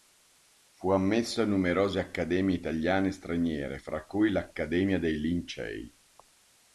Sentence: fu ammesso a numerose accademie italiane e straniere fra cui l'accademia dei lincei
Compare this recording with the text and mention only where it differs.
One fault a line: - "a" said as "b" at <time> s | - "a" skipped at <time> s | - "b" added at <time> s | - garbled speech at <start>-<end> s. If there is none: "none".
none